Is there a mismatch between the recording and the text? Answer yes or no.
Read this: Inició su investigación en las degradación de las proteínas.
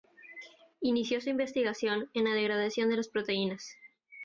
yes